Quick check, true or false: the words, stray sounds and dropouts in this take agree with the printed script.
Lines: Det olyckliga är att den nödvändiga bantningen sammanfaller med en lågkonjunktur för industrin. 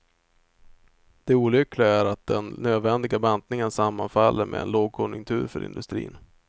true